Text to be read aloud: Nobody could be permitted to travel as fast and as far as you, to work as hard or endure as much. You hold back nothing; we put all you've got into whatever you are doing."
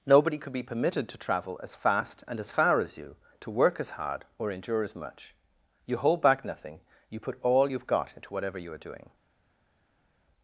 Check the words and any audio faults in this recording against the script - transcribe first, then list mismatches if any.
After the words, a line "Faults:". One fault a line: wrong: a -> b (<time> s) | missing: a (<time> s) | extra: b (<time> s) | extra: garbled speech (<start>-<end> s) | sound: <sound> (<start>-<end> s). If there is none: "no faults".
Nobody could be permitted to travel as fast and as far as you, to work as hard or endure as much. You hold back nothing; you put all you've got into whatever you are doing."
Faults:
wrong: we -> you (7.1 s)